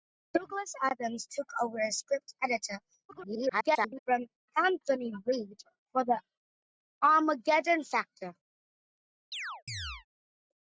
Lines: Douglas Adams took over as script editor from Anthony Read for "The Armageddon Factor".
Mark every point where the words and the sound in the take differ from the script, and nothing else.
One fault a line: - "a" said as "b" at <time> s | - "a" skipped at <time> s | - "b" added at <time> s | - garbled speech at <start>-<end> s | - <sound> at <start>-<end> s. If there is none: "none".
- garbled speech at 3.1-4.0 s
- chirp at 9.3-10.1 s